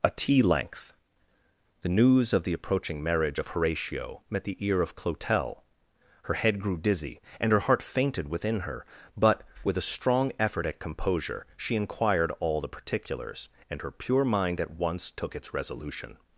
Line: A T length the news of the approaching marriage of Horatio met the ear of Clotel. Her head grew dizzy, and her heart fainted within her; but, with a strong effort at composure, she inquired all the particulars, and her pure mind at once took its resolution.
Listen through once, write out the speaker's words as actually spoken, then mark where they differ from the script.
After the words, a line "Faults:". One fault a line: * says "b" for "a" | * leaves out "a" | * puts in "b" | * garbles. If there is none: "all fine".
A T length the news of the approaching marriage of Horatio met the ear of Clotel. Her head grew dizzy, and her heart fainted within her; but, with a strong effort at composure, she inquired all the particulars, and her pure mind at once took its resolution.
Faults:
all fine